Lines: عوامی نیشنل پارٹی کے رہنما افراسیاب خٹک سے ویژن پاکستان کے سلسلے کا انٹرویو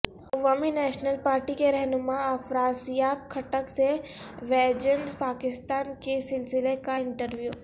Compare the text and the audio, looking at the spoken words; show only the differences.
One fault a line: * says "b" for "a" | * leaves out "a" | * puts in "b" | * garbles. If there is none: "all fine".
all fine